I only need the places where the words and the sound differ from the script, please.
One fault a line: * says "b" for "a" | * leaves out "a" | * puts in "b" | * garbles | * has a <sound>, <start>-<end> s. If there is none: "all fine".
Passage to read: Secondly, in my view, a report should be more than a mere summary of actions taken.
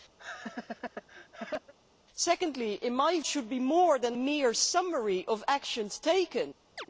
* has a laugh, 0.2-1.7 s
* leaves out "view a report"
* leaves out "a"
* has a chirp, 6.8-6.9 s